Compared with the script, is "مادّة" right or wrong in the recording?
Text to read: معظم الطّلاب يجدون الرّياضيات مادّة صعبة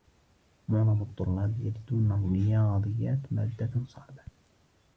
right